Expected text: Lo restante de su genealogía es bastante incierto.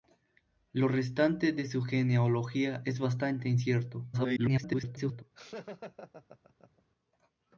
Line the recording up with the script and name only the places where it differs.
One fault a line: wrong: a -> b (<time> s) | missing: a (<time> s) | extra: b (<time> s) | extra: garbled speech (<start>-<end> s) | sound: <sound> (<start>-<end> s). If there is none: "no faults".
extra: garbled speech (4.1-5.2 s)
sound: laugh (5.3-6.8 s)